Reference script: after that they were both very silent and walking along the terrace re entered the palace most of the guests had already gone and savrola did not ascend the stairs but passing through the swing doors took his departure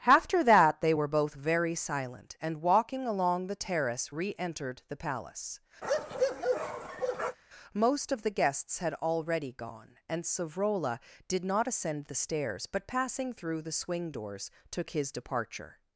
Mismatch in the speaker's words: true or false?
false